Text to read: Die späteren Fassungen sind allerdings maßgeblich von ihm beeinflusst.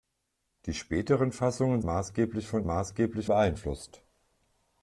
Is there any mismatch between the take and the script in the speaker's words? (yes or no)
yes